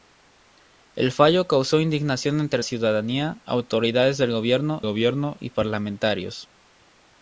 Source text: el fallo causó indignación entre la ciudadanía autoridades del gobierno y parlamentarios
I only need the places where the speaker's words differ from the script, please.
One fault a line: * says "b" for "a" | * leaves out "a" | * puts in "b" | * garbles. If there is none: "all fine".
* leaves out "la"
* puts in "gobierno"